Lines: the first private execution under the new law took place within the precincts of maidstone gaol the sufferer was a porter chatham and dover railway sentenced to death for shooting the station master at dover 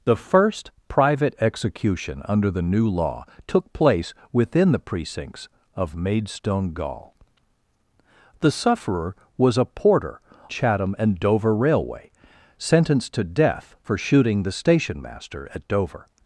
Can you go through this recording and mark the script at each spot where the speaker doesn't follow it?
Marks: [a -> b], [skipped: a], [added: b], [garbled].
the first private execution under the new law took place within the precincts of maidstone gaol the sufferer was a porter chatham and dover railway sentenced to death for shooting the station master at dover